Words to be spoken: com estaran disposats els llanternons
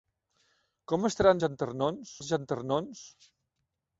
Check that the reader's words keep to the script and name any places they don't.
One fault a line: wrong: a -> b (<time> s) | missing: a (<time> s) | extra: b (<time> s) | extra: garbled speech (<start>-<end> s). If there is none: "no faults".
wrong: disposats -> llanternons (1.5 s)